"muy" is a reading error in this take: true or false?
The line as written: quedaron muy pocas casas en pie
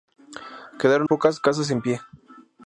true